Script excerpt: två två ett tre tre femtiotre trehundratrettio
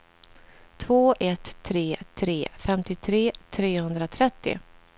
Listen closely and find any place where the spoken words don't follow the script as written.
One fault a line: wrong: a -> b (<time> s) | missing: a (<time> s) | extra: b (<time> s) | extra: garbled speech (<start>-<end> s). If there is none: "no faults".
missing: två (1.1 s)